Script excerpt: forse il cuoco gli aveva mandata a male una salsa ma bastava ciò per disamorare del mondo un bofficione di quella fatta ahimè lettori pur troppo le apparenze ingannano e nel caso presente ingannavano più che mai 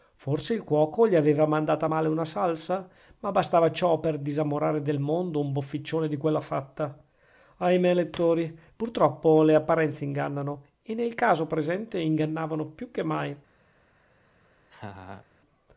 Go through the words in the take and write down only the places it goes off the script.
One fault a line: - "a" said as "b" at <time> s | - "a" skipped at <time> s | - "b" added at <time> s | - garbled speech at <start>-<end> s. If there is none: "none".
none